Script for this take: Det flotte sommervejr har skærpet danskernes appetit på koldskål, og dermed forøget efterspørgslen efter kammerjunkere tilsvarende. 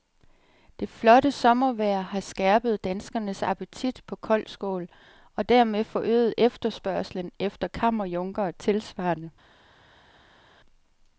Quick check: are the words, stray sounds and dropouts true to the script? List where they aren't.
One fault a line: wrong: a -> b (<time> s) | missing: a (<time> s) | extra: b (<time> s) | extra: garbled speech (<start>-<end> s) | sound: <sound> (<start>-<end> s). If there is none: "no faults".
no faults